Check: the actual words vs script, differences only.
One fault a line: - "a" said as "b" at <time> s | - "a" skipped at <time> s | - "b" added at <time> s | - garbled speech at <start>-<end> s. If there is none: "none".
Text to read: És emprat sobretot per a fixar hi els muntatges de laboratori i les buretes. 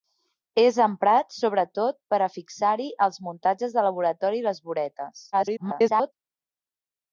- garbled speech at 5.3-6.1 s